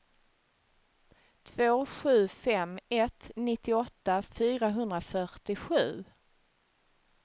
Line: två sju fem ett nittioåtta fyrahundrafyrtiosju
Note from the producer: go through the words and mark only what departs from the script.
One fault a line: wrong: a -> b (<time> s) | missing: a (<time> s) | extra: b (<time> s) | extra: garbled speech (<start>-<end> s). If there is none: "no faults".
no faults